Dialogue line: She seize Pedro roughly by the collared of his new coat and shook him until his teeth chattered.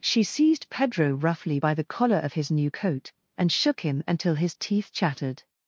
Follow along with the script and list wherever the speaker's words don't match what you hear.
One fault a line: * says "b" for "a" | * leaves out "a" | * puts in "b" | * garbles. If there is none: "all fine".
* says "seized" for "seize"
* says "collar" for "collared"